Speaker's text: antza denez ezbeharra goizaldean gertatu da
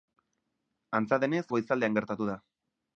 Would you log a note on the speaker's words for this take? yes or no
yes